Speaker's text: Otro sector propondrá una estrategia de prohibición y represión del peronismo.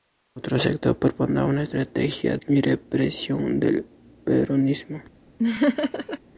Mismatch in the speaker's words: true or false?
true